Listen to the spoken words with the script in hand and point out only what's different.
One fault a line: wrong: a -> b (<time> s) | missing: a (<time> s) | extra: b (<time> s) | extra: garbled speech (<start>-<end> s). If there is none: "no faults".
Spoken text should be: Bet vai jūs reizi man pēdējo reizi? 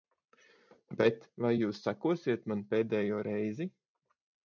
wrong: reizi -> sekosiet (1.9 s)